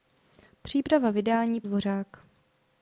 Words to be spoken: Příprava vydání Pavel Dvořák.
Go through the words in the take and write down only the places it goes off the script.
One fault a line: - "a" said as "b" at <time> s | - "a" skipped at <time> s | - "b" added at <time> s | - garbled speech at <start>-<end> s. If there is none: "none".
- "Pavel" skipped at 1.6 s